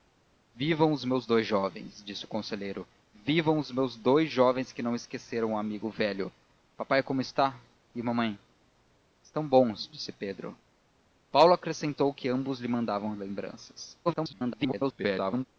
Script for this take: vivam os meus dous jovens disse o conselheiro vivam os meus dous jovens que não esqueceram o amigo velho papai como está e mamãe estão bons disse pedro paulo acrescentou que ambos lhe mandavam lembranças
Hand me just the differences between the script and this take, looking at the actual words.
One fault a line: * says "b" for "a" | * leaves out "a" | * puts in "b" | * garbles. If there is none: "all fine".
* garbles